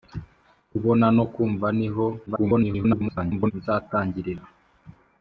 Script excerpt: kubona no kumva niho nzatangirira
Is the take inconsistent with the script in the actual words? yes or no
yes